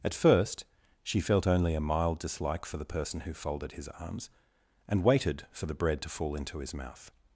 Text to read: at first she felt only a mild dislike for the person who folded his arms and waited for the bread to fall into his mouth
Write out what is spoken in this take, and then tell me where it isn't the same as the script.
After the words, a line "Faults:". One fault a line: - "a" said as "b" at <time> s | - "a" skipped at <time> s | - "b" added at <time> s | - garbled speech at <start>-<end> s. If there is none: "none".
at first she felt only a mild dislike for the person who folded his arms and waited for the bread to fall into his mouth
Faults:
none